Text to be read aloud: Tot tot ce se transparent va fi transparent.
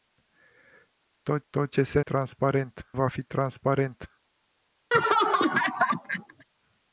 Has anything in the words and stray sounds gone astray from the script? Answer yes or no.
yes